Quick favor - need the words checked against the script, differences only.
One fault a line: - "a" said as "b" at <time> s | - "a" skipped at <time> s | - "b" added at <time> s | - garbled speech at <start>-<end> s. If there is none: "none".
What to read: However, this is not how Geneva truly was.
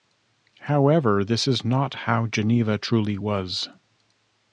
none